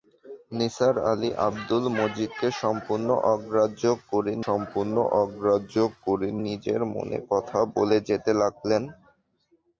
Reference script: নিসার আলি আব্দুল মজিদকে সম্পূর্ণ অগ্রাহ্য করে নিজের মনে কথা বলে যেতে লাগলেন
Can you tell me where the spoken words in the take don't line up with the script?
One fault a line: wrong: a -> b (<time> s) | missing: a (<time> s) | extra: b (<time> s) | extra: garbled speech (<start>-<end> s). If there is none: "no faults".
extra: সম্পূর্ণ অগ্রাহ্য করে (4.5 s)